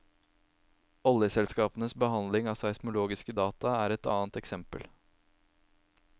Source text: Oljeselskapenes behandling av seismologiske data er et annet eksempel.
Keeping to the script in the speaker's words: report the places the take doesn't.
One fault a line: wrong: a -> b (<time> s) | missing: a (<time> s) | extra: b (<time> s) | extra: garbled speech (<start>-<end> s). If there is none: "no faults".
no faults